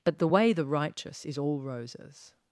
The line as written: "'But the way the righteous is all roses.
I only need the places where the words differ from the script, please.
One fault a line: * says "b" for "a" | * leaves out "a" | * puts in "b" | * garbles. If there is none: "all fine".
all fine